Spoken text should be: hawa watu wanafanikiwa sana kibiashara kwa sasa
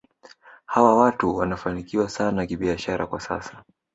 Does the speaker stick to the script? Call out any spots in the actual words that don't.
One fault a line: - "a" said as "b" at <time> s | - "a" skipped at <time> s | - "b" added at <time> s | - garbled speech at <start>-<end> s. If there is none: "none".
none